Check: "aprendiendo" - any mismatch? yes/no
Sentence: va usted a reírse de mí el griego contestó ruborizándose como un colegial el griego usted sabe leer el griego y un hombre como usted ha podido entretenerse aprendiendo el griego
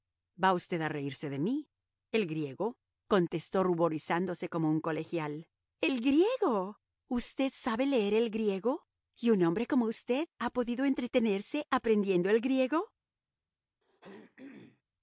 no